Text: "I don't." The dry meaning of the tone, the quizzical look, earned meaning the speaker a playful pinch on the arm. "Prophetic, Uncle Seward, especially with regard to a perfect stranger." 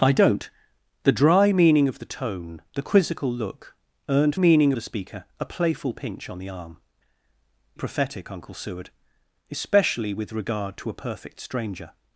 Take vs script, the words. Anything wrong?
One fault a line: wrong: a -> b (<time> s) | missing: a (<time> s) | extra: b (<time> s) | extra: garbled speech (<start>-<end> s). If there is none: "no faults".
no faults